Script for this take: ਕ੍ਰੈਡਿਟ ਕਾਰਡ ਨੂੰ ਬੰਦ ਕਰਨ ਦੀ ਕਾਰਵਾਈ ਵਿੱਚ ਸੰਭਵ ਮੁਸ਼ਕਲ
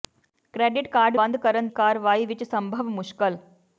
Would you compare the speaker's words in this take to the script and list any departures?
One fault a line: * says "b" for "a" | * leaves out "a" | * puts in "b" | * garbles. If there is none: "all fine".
* leaves out "ਨੂੰ"
* leaves out "ਦੀ"